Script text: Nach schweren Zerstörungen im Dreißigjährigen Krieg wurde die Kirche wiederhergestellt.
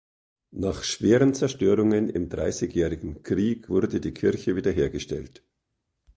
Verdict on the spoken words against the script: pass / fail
pass